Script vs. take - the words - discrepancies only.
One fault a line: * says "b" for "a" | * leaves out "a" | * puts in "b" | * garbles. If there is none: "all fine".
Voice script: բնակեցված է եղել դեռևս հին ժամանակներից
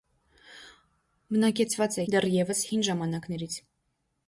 * leaves out "եղել"